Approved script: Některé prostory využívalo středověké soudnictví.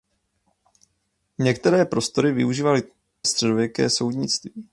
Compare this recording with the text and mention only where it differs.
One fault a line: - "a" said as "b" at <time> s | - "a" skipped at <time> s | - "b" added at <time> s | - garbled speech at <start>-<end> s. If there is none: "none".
none